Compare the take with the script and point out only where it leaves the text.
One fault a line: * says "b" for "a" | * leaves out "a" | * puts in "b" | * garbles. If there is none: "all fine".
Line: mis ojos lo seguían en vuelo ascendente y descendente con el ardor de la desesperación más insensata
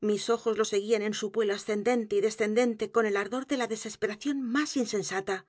* puts in "su"